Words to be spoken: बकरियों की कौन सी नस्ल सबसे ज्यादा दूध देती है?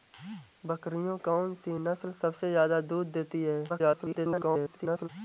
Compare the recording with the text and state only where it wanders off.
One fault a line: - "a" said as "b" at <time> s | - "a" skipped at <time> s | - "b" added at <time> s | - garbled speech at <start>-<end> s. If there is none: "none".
- "की" skipped at 1.2 s
- garbled speech at 3.7-5.1 s